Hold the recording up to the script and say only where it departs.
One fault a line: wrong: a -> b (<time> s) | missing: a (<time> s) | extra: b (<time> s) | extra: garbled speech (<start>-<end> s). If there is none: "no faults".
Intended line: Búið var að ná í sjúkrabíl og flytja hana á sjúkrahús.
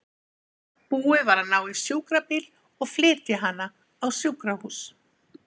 no faults